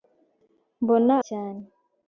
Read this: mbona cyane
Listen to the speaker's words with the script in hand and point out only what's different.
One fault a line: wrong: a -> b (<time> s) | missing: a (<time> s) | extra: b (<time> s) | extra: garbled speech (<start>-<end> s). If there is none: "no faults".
no faults